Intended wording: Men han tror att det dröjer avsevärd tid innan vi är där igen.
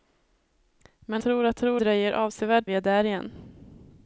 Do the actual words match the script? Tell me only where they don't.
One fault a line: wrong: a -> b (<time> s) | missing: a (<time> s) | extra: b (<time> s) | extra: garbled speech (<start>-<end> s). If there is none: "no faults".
missing: han (1.2 s)
wrong: det -> tror (1.5 s)
missing: tid innan (2.7 s)